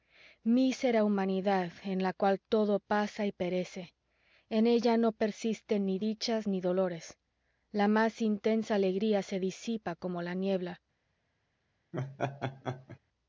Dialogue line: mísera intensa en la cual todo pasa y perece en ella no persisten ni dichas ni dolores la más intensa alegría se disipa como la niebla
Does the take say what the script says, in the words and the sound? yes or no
no